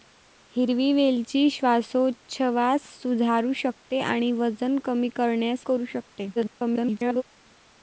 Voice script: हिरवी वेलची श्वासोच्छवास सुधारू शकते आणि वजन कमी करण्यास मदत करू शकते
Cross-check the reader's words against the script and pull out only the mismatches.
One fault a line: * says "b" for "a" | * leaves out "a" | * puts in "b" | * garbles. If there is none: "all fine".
* leaves out "मदत"
* garbles